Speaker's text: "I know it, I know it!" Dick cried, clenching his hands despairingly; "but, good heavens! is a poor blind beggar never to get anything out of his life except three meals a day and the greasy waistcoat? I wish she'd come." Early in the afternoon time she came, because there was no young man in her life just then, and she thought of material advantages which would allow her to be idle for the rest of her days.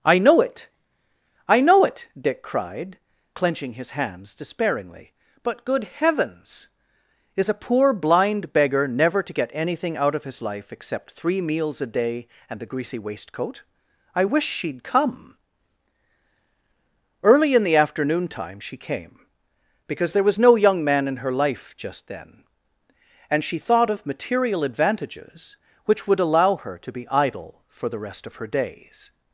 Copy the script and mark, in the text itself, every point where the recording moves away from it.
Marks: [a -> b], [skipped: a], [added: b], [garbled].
"I know it, I know it!" Dick cried, clenching his hands despairingly; "but, good heavens! is a poor blind beggar never to get anything out of his life except three meals a day and the greasy waistcoat? I wish she'd come." Early in the afternoon time she came, because there was no young man in her life just then, and she thought of material advantages which would allow her to be idle for the rest of her days.